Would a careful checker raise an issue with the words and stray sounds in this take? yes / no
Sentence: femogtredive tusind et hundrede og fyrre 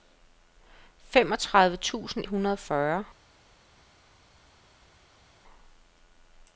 yes